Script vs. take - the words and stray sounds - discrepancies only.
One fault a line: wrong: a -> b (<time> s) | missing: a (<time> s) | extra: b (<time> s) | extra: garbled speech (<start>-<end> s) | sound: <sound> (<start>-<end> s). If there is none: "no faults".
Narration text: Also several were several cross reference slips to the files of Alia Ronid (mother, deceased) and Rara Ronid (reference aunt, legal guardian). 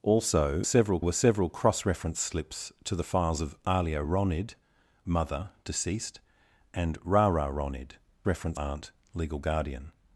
no faults